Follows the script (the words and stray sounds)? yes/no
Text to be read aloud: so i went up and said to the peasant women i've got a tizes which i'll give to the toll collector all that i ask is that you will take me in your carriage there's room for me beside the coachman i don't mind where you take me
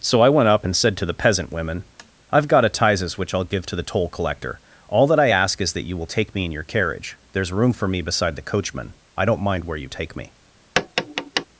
no